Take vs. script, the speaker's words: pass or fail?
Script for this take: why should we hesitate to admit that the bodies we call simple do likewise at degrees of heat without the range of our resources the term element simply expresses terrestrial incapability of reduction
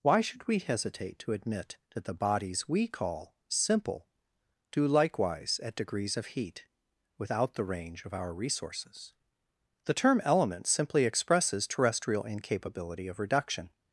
pass